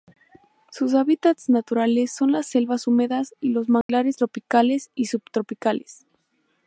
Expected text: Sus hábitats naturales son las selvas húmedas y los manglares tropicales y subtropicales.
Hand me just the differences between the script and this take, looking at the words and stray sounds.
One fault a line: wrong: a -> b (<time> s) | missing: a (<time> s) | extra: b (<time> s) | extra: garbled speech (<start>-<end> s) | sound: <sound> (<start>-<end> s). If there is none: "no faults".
sound: dropout (3.8-3.9 s)